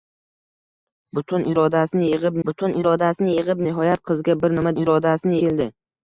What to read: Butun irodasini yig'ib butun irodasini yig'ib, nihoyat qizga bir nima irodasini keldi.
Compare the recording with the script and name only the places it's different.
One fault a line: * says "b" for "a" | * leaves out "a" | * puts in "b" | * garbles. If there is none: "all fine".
all fine